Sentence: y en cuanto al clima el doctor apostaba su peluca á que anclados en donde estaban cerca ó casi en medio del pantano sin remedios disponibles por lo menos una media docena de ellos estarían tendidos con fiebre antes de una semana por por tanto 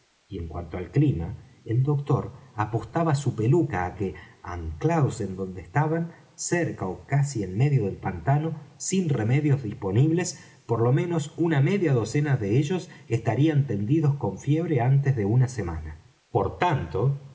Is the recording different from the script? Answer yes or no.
yes